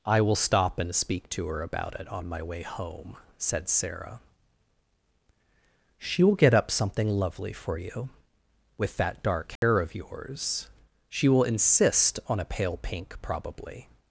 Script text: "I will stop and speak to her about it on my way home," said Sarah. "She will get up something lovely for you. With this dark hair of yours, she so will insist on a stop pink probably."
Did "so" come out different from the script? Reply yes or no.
yes